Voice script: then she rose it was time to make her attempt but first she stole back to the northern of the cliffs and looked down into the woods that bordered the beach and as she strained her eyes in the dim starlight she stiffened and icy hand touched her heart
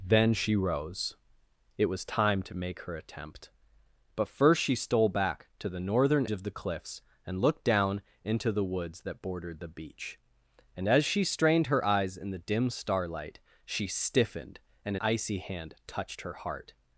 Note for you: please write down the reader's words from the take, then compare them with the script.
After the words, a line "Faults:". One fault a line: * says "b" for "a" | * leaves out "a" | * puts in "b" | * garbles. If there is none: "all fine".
then she rose it was time to make her attempt but first she stole back to the northern of the cliffs and looked down into the woods that bordered the beach and as she strained her eyes in the dim starlight she stiffened and icy hand touched her heart
Faults:
all fine